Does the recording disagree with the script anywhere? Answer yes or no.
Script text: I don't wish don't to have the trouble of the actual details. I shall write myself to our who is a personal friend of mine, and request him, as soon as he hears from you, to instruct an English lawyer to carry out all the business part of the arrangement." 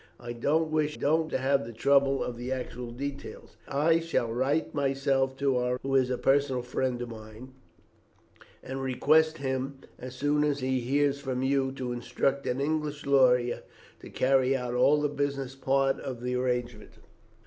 no